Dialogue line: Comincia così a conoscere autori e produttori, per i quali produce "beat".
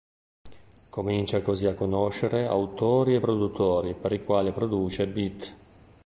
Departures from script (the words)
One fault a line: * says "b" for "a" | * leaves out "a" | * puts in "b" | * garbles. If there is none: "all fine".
all fine